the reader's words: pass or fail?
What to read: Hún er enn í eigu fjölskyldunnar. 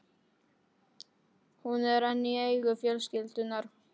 pass